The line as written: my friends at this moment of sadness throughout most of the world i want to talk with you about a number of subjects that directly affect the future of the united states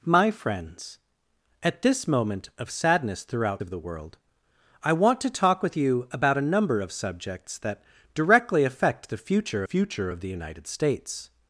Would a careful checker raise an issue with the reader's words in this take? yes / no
yes